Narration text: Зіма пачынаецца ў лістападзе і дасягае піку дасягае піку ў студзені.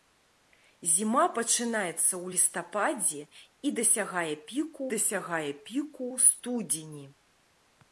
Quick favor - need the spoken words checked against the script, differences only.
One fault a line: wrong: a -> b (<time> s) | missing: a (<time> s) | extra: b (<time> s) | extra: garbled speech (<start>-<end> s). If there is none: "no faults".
no faults